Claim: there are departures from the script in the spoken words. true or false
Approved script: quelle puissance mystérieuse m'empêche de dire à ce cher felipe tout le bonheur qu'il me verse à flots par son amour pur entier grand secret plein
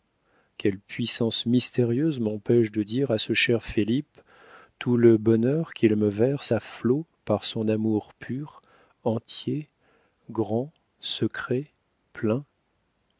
false